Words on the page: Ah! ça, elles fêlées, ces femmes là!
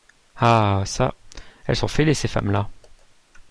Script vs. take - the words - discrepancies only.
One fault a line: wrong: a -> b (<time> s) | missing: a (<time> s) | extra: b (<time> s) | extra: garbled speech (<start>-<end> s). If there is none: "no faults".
extra: sont (1.8 s)